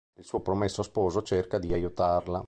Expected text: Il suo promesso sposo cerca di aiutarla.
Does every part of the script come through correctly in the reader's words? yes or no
yes